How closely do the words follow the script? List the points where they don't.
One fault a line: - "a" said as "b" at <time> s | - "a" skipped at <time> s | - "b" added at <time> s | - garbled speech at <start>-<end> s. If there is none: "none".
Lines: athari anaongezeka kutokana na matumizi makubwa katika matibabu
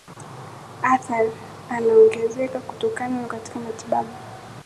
- "matumizi makubwa" skipped at 3.3 s